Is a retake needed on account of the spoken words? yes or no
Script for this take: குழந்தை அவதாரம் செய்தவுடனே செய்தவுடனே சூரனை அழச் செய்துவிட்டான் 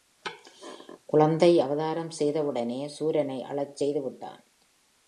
yes